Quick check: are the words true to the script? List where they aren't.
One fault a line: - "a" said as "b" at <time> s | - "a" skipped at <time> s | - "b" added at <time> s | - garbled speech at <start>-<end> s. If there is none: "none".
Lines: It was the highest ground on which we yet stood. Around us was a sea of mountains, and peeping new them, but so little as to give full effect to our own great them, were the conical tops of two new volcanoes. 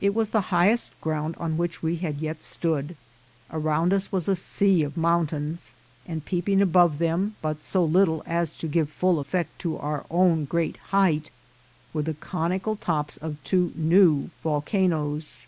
- "had" added at 2.0 s
- "new" said as "above" at 6.6 s
- "them" said as "height" at 10.9 s